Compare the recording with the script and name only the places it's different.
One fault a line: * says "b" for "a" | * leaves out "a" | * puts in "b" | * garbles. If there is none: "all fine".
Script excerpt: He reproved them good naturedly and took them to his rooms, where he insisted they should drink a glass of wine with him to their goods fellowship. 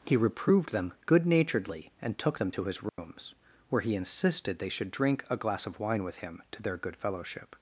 * says "good" for "goods"